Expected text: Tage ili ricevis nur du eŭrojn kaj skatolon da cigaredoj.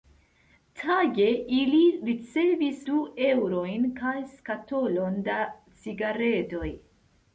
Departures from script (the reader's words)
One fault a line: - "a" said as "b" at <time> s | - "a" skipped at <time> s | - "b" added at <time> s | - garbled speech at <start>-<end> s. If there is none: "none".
- "nur" skipped at 2.8 s